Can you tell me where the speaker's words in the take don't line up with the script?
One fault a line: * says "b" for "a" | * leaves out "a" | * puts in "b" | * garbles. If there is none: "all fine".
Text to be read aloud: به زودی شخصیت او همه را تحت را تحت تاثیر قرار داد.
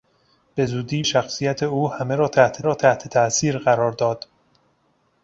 all fine